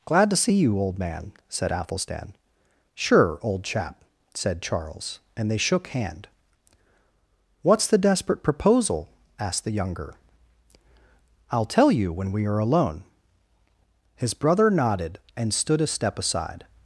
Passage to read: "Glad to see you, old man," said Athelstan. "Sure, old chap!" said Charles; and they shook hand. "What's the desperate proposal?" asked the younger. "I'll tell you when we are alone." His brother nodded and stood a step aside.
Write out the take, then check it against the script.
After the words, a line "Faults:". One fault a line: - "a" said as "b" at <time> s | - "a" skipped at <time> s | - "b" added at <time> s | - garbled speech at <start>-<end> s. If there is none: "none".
"Glad to see you, old man," said Athelstan. "Sure, old chap!" said Charles; and they shook hand. "What's the desperate proposal?" asked the younger. "I'll tell you when we are alone." His brother nodded and stood a step aside.
Faults:
none